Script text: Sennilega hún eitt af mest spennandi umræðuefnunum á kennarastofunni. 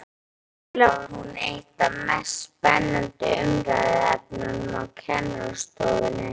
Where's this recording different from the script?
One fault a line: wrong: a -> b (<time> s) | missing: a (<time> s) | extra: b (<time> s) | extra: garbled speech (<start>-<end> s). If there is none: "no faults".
no faults